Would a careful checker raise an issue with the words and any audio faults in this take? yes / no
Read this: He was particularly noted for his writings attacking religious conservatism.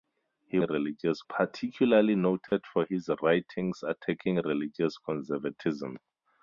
yes